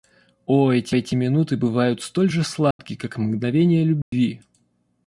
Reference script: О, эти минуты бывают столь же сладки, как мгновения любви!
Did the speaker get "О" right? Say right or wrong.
right